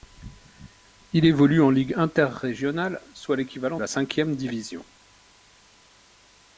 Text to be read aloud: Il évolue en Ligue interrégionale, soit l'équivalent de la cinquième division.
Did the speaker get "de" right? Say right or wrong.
wrong